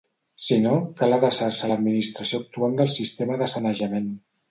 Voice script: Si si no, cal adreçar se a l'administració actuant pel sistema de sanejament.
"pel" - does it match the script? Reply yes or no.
no